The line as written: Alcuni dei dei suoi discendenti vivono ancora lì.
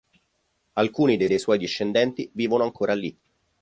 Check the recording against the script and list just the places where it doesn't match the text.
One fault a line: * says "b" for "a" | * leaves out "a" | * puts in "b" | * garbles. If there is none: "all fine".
all fine